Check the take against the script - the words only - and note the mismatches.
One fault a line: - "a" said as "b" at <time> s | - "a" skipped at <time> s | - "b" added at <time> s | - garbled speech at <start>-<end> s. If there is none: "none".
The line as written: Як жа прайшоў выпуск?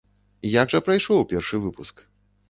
- "першы" added at 1.3 s